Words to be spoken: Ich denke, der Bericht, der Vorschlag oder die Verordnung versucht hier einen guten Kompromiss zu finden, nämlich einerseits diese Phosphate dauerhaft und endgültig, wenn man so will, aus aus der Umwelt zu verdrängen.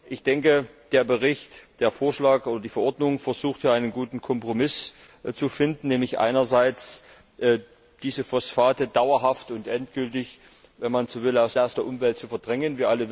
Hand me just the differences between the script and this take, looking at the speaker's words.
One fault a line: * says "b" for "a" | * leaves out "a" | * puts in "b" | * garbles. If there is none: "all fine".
all fine